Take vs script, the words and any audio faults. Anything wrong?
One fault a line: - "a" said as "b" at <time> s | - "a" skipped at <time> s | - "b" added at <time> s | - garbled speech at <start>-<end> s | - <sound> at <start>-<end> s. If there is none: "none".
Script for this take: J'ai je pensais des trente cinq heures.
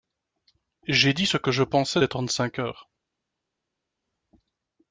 - "dit ce que" added at 1.1 s